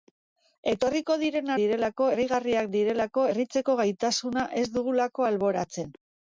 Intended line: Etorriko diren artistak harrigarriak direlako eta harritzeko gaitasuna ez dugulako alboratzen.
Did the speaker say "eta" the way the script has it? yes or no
no